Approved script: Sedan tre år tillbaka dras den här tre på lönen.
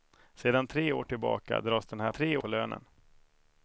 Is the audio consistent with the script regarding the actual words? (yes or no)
yes